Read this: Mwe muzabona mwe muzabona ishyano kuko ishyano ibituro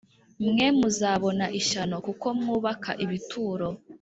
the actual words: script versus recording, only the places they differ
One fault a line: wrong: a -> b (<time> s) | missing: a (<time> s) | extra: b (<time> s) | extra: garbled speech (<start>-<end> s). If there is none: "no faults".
missing: mwe muzabona (1.4 s)
wrong: ishyano -> mwubaka (2.4 s)